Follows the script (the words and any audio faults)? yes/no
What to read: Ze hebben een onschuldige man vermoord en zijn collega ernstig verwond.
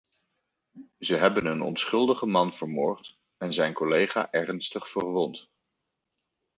yes